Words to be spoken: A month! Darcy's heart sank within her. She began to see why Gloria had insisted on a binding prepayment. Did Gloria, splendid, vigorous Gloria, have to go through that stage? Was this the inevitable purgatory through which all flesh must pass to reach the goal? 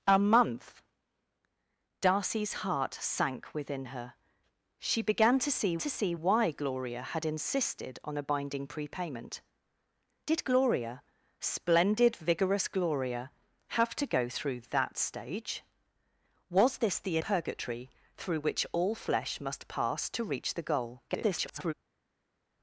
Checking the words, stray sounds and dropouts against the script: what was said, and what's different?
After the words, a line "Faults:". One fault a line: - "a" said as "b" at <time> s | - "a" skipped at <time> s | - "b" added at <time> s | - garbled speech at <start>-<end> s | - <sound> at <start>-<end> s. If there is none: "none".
A month! Darcy's heart sank within her. She began to see to see why Gloria had insisted on a binding prepayment. Did Gloria, splendid, vigorous Gloria, have to go through that stage? Was this the purgatory through which all flesh must pass to reach the goal? [garbled]
Faults:
- "to see" added at 5.8 s
- "inevitable" skipped at 17.2 s
- garbled speech at 21.1-21.7 s